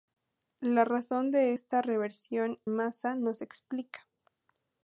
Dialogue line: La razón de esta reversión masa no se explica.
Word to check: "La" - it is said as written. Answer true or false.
true